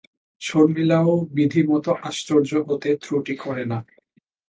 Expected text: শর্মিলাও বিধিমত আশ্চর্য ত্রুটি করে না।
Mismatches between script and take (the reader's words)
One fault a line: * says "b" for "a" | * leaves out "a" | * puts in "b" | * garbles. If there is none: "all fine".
* puts in "হতে"